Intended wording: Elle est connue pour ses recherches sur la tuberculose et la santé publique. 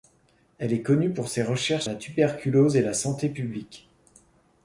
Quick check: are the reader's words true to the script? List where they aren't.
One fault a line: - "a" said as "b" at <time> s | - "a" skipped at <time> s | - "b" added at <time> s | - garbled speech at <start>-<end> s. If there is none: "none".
- "sur" skipped at 1.9 s